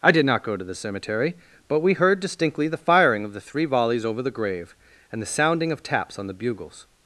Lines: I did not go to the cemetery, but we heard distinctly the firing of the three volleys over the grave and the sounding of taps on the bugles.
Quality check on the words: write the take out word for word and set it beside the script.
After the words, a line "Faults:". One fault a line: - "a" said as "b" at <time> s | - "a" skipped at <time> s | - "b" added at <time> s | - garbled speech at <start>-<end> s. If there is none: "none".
I did not go to the cemetery, but we heard distinctly the firing of the three volleys over the grave and the sounding of taps on the bugles.
Faults:
none